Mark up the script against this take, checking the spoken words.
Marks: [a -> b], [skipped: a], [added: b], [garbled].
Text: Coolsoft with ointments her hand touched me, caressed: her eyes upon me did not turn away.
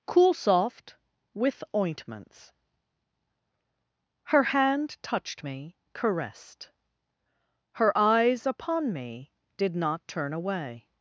Coolsoft with ointments her hand touched me, caressed: her eyes upon me did not turn away.